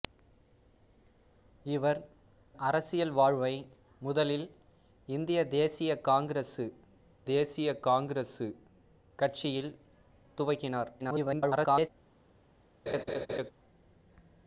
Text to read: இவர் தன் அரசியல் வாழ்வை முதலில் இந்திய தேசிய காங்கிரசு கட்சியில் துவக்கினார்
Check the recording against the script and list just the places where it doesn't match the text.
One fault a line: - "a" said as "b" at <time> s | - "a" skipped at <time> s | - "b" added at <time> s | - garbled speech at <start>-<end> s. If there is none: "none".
- "தன்" skipped at 2.0 s
- "தேசிய காங்கிரசு" added at 7.2 s
- garbled speech at 11.0-11.9 s